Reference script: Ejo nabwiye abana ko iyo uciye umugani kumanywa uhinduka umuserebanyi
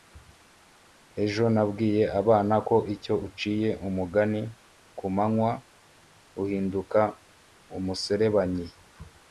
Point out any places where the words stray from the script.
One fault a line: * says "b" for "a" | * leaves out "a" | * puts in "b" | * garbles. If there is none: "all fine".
all fine